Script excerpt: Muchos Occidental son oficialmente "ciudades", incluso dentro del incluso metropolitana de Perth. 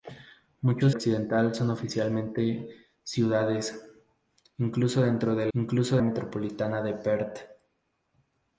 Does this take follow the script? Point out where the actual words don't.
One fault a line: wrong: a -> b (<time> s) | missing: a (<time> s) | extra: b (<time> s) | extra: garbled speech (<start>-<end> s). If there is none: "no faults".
no faults